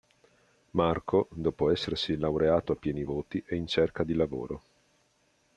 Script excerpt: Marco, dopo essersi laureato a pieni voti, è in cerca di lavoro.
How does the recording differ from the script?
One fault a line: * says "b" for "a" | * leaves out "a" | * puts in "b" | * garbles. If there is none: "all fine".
all fine